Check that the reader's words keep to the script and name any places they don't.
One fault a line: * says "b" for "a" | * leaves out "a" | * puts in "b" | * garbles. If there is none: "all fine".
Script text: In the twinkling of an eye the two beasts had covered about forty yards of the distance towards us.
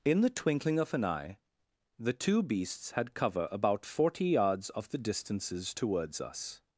* says "cover" for "covered"
* says "distances" for "distance"